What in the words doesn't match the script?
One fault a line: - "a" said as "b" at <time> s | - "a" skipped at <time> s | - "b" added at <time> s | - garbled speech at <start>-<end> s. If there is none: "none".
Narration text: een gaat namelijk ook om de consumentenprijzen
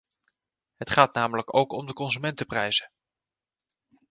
- "een" said as "het" at 0.8 s